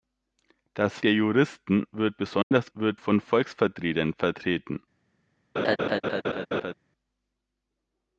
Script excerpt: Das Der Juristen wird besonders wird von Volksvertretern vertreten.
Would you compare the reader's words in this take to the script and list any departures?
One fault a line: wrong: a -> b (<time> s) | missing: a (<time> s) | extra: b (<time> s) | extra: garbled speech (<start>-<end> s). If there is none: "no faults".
no faults